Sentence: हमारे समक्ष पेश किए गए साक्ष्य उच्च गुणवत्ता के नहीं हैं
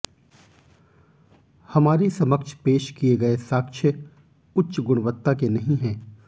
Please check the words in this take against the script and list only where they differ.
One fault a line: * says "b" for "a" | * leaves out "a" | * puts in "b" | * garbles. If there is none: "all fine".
all fine